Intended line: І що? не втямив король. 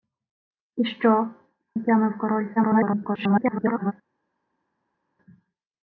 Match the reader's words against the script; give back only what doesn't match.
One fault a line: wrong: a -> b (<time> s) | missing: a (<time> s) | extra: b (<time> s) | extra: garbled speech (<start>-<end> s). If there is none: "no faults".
missing: не (1.3 s)
extra: garbled speech (2.6-3.9 s)